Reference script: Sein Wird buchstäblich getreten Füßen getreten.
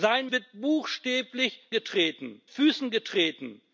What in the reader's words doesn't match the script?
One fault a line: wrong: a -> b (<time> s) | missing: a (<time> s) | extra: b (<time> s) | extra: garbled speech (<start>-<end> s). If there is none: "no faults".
no faults